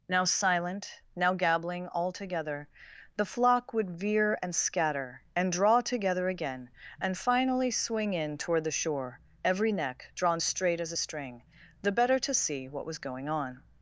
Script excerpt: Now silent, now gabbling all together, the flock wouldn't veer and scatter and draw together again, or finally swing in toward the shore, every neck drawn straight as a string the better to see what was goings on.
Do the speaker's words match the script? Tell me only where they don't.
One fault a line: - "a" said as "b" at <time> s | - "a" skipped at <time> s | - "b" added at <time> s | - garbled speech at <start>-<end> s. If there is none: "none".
- "wouldn't" said as "would" at 3.7 s
- "or" said as "and" at 7.0 s
- "goings" said as "going" at 13.0 s